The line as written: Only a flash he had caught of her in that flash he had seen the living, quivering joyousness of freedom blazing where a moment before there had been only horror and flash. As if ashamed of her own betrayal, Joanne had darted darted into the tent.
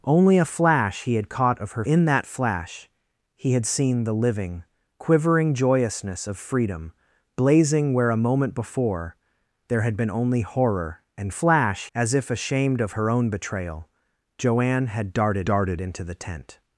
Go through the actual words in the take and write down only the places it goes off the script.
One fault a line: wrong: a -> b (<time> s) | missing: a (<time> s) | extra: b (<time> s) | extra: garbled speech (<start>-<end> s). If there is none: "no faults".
no faults